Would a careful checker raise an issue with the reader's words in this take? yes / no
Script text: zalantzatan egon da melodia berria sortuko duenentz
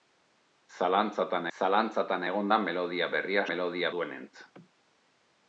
yes